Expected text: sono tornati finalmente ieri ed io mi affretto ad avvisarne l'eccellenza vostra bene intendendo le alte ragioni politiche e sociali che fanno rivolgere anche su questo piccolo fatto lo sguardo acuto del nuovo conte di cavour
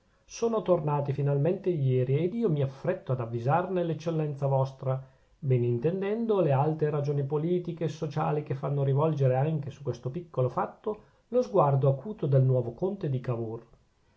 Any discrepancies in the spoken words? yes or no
no